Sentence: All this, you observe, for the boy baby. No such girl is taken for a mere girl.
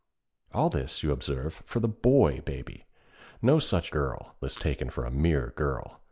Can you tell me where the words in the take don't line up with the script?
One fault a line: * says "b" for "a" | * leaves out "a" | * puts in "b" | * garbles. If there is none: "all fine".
all fine